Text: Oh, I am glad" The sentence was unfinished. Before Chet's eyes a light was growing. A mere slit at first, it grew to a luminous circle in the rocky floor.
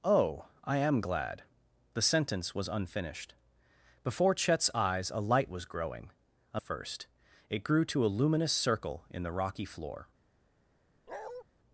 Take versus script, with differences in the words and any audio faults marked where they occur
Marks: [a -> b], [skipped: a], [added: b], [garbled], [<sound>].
Oh, I am glad" The sentence was unfinished. Before Chet's eyes a light was growing. A [skipped: mere slit at] first, it grew to a luminous circle in the rocky floor. [bark]